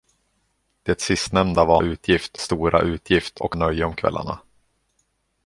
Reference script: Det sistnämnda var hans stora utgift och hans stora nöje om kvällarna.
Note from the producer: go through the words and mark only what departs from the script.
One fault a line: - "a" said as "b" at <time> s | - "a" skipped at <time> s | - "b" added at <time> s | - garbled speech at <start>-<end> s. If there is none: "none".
- "hans" said as "utgift" at 1.8 s
- "hans stora" skipped at 3.5 s